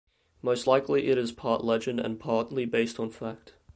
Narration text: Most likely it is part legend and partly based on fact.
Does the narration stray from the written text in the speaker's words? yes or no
no